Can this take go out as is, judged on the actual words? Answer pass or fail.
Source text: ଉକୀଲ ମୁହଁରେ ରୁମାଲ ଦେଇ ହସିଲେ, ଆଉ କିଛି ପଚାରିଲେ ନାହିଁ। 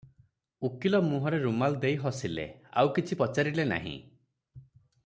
pass